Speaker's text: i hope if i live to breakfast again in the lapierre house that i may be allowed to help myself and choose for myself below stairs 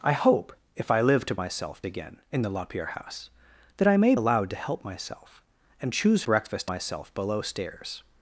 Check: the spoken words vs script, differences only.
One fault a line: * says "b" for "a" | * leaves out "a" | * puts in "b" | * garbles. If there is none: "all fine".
* says "myself" for "breakfast"
* leaves out "be"
* says "breakfast" for "for"